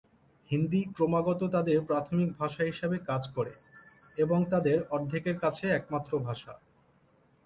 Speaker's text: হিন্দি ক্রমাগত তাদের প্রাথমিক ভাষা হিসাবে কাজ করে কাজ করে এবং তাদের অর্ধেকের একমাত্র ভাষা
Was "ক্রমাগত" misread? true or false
false